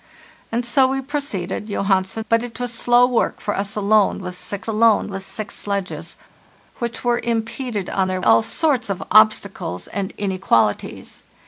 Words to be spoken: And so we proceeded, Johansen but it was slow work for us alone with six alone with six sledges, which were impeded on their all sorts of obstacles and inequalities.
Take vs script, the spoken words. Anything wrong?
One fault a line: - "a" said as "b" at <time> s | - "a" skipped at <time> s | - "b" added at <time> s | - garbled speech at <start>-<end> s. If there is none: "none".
none